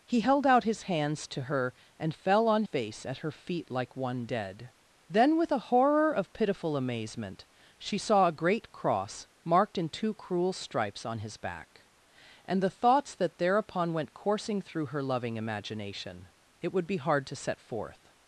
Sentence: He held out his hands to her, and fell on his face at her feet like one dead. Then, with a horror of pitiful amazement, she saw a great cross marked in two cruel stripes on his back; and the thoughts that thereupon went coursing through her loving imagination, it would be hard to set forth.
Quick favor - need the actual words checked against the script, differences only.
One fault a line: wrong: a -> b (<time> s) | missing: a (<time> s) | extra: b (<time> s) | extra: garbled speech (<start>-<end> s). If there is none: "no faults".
missing: his (2.6 s)